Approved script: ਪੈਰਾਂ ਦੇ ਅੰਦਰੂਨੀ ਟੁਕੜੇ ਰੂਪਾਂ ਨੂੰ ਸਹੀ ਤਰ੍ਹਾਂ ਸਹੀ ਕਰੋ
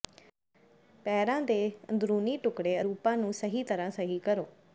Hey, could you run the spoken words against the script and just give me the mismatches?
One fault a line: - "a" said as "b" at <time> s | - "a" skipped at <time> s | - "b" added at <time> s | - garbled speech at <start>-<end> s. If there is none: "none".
none